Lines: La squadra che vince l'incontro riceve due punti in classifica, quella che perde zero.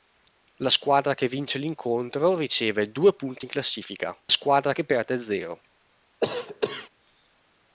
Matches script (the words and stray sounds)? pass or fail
fail